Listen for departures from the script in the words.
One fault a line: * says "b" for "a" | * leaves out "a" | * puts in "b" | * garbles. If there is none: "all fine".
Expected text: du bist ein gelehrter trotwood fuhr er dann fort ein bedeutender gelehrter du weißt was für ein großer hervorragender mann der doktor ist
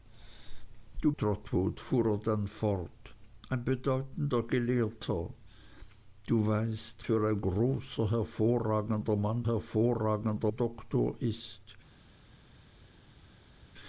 * leaves out "bist ein gelehrter"
* leaves out "was"
* says "hervorragender" for "der"